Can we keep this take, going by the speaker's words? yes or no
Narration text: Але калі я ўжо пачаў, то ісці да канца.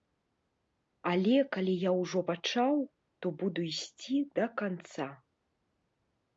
no